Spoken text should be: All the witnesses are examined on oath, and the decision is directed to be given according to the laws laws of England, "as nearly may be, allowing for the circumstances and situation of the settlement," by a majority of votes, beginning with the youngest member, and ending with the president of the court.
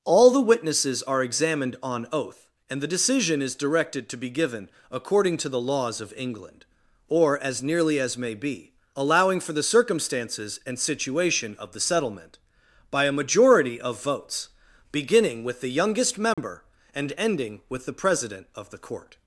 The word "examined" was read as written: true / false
true